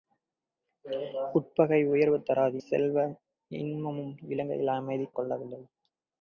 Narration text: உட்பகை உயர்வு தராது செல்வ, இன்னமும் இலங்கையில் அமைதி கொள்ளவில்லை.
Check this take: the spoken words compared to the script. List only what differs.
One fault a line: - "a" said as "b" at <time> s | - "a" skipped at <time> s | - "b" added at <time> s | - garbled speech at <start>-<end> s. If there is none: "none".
none